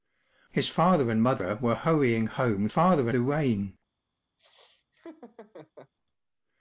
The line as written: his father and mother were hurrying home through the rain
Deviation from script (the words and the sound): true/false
true